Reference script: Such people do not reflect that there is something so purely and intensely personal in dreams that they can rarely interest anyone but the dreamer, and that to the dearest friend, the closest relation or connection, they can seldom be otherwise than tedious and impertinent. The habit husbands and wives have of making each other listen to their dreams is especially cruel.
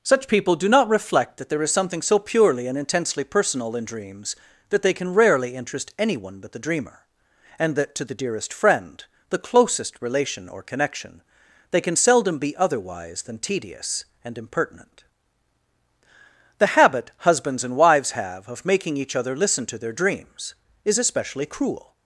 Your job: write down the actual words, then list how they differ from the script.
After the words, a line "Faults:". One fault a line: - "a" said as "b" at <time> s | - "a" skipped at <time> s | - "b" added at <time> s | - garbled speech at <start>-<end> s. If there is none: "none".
Such people do not reflect that there is something so purely and intensely personal in dreams that they can rarely interest anyone but the dreamer, and that to the dearest friend, the closest relation or connection, they can seldom be otherwise than tedious and impertinent. The habit husbands and wives have of making each other listen to their dreams is especially cruel.
Faults:
none